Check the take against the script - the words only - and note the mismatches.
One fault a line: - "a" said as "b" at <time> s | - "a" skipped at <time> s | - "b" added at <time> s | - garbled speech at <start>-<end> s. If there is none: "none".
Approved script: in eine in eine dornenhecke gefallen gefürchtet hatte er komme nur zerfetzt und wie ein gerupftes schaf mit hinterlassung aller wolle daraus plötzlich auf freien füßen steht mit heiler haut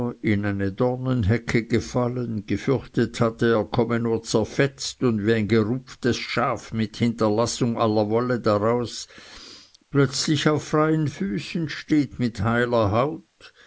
- "in eine" skipped at 0.7 s